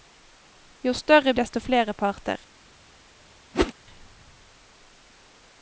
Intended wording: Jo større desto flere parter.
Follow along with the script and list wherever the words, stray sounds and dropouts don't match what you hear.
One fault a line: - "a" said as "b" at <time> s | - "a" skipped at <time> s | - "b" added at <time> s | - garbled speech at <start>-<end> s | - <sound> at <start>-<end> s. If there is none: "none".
- whoosh at 3.5-3.7 s